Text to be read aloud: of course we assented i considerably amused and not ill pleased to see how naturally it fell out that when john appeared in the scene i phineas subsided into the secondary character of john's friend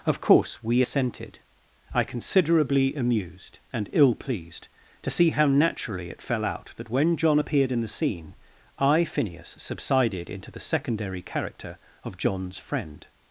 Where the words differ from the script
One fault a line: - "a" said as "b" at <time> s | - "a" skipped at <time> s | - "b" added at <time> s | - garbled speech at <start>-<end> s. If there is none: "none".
- "not" skipped at 3.9 s